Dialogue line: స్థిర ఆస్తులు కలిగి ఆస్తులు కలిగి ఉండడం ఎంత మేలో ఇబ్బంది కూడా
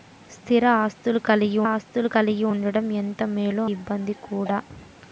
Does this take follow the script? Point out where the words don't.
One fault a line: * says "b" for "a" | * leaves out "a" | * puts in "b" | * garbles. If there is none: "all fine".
all fine